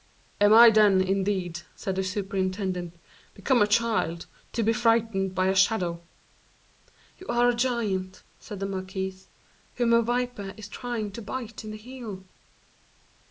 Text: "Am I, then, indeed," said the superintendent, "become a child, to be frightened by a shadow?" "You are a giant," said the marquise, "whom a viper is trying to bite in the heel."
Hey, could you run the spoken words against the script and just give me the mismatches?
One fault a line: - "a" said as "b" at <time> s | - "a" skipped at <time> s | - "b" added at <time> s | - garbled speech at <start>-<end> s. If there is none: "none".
none